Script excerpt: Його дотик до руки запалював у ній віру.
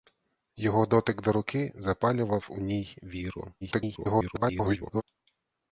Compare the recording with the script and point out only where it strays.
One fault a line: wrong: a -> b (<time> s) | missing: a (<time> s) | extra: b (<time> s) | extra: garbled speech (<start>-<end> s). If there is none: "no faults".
extra: garbled speech (3.6-5.0 s)